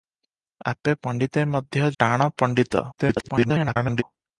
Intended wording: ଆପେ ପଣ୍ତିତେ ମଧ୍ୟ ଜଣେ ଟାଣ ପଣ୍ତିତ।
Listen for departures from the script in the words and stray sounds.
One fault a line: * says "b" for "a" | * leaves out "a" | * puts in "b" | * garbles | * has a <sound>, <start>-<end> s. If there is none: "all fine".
* leaves out "ଜଣେ"
* garbles